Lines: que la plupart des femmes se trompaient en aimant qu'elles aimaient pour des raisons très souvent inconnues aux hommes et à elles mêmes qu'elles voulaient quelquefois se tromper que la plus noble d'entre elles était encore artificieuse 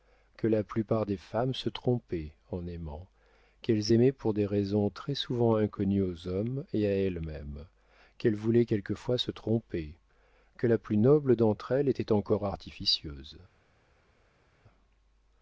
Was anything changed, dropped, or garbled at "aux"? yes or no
no